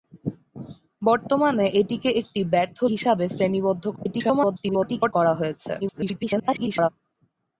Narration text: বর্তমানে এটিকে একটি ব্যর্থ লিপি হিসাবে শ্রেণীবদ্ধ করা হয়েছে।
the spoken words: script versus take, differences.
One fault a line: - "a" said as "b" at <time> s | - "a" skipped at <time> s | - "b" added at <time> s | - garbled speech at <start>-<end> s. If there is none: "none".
- "লিপি" skipped at 2.8 s
- garbled speech at 4.0-5.1 s
- garbled speech at 5.8-6.9 s